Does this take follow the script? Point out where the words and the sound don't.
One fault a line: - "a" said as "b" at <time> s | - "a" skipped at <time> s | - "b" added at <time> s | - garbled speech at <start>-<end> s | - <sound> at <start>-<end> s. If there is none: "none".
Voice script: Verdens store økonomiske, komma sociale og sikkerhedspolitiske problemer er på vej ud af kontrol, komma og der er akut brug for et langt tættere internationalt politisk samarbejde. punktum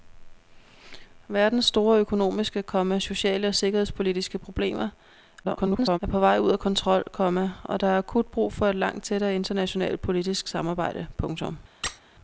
- garbled speech at 5.4-6.0 s
- squeak at 11.8-12.0 s